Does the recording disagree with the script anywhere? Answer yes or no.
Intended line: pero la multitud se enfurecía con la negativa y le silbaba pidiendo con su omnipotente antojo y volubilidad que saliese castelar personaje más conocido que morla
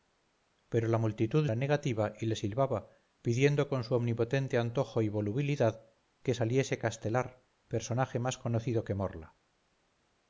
yes